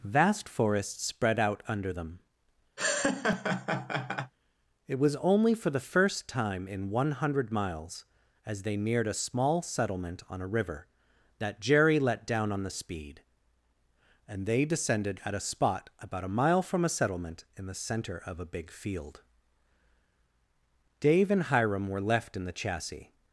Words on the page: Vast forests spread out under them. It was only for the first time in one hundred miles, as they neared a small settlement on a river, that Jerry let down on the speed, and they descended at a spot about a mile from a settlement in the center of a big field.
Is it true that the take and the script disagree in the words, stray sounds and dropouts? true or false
true